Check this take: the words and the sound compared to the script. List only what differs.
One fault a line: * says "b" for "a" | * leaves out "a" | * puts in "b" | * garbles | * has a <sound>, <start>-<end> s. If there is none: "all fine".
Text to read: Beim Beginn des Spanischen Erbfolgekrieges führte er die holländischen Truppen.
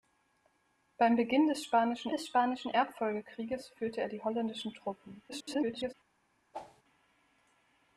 * puts in "des Spanischen"
* garbles
* has a whoosh, 6.5-6.8 s